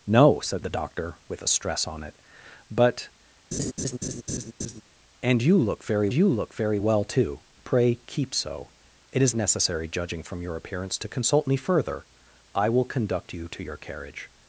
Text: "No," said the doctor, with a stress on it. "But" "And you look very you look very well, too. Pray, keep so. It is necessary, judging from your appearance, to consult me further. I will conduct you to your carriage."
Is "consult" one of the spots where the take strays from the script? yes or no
no